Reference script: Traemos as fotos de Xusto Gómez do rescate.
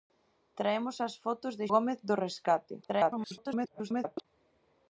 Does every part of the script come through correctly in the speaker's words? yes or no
no